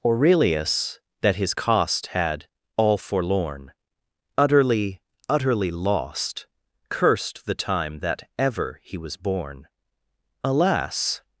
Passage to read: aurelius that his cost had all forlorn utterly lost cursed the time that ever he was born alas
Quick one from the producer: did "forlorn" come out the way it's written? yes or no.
yes